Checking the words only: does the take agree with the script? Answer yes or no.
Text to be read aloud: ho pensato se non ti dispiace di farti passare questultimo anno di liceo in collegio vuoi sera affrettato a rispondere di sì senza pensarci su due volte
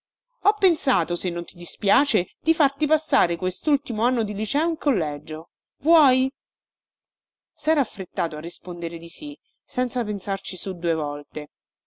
yes